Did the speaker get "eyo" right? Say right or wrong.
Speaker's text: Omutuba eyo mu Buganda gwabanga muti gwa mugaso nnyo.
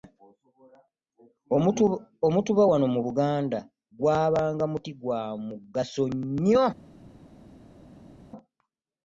wrong